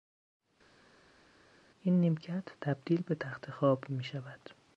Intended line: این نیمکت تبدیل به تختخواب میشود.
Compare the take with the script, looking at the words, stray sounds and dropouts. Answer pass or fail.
pass